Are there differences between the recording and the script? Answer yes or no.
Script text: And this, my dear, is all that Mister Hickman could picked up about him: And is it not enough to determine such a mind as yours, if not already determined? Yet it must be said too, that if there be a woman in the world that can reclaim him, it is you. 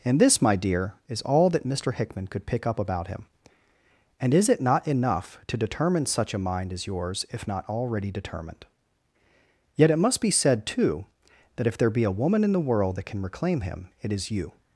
yes